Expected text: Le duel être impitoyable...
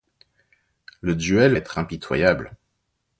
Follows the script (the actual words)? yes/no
yes